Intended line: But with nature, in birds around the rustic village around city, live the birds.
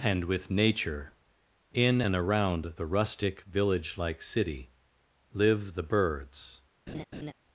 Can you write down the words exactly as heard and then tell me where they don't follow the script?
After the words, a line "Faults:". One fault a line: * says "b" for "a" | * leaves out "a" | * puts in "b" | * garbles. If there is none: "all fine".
And with nature, in and around the rustic village like city, live the birds.
Faults:
* says "And" for "But"
* says "and" for "birds"
* says "like" for "around"